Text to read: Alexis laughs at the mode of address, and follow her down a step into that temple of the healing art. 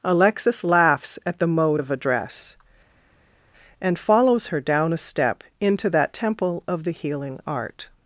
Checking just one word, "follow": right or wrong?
wrong